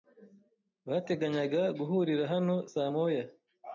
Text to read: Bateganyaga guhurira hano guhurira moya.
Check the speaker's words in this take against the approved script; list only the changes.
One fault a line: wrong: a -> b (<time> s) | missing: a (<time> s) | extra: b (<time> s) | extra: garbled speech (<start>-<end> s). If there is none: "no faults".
wrong: guhurira -> saa (2.7 s)